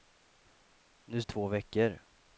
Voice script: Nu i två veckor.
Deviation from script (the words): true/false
false